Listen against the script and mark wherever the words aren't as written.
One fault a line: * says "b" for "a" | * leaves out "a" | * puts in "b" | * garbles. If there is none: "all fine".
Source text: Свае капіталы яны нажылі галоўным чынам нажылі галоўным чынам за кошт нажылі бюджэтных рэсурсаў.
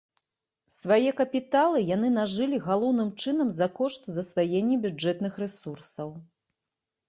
* leaves out "нажылі галоўным чынам"
* says "засваення" for "нажылі"